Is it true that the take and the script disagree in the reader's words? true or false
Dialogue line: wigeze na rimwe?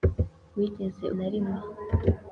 false